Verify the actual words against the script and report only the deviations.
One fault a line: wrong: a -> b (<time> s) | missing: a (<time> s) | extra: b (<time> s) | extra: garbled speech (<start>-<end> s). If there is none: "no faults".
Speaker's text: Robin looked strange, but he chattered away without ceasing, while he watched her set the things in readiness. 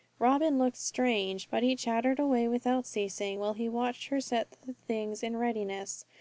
no faults